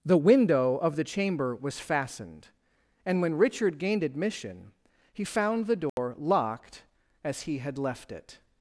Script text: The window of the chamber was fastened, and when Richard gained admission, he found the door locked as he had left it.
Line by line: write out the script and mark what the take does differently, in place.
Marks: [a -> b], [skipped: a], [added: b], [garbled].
The window of the chamber was fastened, and when Richard gained admission, he found the door locked as he had left it.